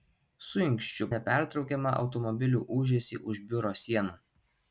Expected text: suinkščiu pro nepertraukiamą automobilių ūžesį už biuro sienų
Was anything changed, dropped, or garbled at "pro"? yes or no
yes